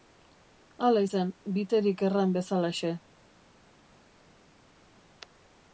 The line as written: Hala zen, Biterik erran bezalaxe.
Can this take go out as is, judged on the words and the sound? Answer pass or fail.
pass